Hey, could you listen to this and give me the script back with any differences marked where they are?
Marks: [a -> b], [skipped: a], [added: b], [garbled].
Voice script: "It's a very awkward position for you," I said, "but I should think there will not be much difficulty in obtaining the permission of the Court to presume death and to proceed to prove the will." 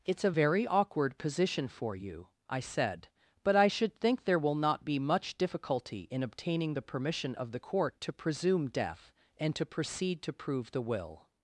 "It's a very awkward position for you," I said, "but I should think there will not be much difficulty in obtaining the permission of the Court to presume death and to proceed to prove the will."